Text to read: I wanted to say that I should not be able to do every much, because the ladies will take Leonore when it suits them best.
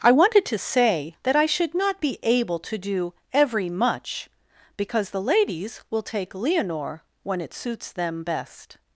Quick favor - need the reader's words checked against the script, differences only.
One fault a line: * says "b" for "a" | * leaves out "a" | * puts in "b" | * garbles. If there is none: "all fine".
all fine